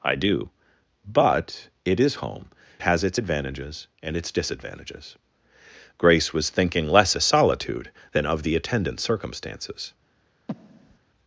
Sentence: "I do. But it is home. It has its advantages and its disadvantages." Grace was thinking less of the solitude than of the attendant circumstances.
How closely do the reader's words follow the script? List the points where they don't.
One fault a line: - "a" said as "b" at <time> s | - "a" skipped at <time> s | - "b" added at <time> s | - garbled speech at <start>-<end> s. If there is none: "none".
- "It" skipped at 2.5 s
- "of" skipped at 7.1 s